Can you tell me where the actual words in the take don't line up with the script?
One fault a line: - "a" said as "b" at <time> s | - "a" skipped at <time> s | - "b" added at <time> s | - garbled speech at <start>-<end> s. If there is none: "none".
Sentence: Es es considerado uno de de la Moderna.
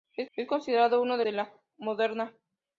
none